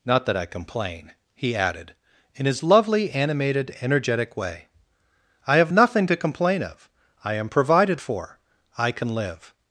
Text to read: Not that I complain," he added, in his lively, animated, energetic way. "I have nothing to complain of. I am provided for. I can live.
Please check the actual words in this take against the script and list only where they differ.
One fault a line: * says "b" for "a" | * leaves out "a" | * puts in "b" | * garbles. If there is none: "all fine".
* says "lovely" for "lively"